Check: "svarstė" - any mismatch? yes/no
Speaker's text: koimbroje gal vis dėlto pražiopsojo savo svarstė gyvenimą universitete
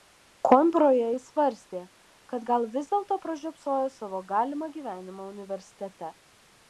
yes